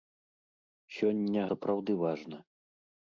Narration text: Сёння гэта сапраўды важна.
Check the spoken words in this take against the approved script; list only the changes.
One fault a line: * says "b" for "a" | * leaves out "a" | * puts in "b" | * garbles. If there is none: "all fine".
* leaves out "гэта"